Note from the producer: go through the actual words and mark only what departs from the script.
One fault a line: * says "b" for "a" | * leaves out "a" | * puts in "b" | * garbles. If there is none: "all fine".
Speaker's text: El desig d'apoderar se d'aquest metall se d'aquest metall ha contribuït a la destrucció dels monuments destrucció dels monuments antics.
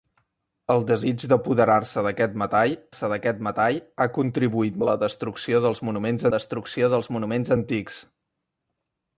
all fine